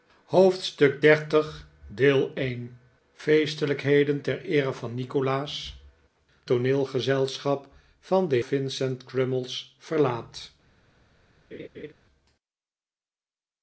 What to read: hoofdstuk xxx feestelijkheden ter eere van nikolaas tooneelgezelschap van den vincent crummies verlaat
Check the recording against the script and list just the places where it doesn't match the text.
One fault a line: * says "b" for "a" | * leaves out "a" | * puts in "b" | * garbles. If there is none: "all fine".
all fine